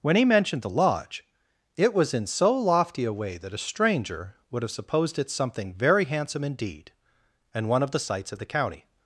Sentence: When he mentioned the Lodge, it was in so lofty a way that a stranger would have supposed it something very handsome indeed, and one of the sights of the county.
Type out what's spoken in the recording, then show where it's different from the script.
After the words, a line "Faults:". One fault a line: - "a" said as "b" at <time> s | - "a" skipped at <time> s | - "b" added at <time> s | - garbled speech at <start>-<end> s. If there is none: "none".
When he mentioned the Lodge, it was in so lofty a way that a stranger would have supposed it something very handsome indeed, and one of the sights of the county.
Faults:
none